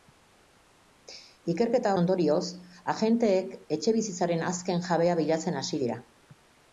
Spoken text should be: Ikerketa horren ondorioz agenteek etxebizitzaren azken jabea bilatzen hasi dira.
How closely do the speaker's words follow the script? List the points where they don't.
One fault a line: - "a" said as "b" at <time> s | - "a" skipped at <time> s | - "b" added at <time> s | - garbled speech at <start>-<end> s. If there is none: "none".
- "horren" skipped at 1.9 s